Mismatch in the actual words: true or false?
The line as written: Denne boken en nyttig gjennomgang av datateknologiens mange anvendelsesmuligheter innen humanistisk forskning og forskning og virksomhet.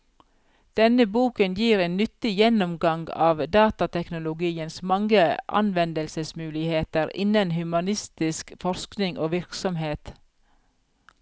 true